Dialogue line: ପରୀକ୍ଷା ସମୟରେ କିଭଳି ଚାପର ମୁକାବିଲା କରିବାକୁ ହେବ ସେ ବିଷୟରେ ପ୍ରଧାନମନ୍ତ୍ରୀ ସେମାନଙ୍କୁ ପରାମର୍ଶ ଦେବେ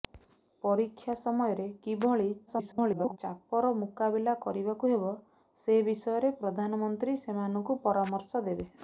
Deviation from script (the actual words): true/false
true